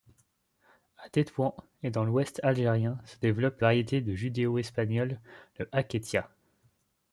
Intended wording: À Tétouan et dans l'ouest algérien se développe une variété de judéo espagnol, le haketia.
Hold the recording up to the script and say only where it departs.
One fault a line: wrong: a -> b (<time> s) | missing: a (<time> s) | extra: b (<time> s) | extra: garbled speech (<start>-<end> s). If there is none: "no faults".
missing: une (3.6 s)